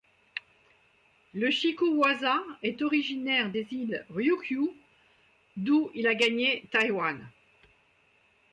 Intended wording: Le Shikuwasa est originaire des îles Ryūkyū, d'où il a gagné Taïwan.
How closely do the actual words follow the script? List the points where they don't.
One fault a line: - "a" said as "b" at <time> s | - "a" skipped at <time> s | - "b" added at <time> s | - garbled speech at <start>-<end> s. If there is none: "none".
none